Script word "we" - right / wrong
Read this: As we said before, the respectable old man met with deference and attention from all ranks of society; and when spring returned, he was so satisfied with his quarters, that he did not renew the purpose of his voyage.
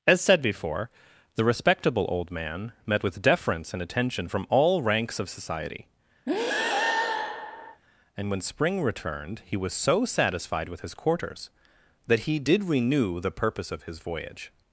wrong